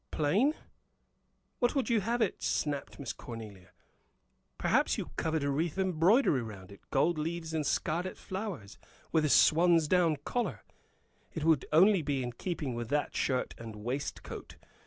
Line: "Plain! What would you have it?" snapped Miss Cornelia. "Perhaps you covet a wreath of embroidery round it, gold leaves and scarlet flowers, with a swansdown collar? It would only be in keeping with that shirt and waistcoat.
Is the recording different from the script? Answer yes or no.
yes